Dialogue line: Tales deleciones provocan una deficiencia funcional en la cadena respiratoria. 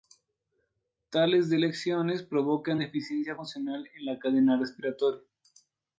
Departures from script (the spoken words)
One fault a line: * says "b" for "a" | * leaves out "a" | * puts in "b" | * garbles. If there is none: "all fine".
* leaves out "una"